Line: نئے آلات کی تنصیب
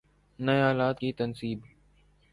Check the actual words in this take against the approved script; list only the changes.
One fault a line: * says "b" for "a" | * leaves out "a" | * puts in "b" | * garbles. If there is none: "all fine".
all fine